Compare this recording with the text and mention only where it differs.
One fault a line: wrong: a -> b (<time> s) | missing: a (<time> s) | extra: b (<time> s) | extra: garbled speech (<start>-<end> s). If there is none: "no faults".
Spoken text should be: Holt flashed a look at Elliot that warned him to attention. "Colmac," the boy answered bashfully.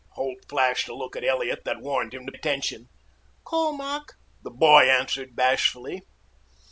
no faults